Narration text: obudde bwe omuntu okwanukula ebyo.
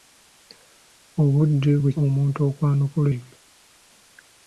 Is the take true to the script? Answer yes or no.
yes